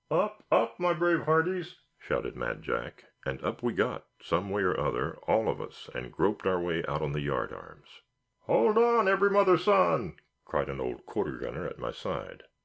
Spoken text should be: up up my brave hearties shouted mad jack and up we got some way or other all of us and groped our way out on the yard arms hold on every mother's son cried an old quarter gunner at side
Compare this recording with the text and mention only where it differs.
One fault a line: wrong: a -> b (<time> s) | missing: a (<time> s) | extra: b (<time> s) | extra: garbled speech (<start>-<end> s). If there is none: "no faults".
extra: my (11.8 s)